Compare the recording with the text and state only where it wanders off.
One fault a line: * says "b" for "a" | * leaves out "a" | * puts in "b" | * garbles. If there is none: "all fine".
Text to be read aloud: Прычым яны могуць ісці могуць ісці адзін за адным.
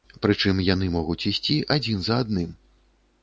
* leaves out "могуць ісці"